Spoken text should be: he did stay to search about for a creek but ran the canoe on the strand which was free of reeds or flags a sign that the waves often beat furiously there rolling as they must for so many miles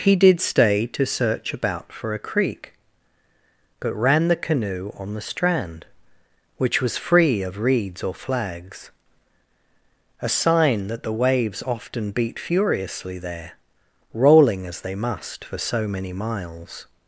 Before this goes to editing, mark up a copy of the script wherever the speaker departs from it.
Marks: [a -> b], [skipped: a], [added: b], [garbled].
he did stay to search about for a creek but ran the canoe on the strand which was free of reeds or flags a sign that the waves often beat furiously there rolling as they must for so many miles